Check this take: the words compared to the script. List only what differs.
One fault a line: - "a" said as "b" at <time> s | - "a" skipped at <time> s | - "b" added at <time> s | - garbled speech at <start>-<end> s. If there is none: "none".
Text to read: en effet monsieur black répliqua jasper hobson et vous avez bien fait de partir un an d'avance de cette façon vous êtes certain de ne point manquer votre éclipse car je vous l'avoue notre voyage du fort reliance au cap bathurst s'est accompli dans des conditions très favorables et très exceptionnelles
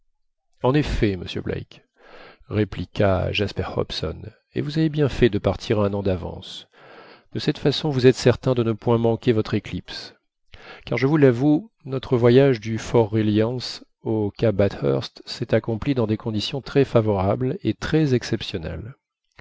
none